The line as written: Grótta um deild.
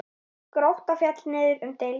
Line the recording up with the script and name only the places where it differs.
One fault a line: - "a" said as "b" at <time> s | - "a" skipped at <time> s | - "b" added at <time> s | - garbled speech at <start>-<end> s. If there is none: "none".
- "féll niður" added at 1.0 s